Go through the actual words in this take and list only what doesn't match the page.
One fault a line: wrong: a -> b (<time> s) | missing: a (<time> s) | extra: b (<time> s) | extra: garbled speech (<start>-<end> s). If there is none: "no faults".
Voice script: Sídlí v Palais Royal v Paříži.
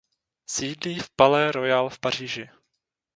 no faults